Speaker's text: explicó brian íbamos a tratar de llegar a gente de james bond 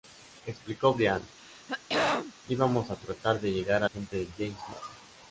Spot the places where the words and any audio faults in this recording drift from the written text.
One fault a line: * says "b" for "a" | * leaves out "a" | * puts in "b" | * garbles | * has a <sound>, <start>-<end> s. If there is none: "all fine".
* has a throat clearing, 1.4-2.3 s